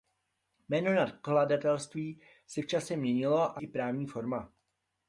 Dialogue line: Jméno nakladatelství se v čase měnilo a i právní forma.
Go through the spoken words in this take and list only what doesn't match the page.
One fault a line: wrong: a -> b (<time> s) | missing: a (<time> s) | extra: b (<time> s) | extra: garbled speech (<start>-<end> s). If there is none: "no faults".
no faults